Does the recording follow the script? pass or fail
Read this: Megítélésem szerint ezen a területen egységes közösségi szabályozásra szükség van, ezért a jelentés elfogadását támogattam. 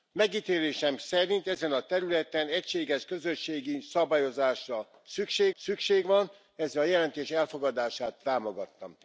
fail